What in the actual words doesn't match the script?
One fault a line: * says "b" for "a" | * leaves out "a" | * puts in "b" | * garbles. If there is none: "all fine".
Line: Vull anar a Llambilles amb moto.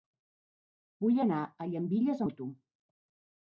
* leaves out "amb"